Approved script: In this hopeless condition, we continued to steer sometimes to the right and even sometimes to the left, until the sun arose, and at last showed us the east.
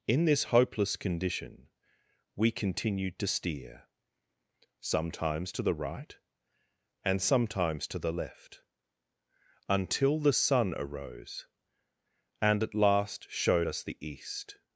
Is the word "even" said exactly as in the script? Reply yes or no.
no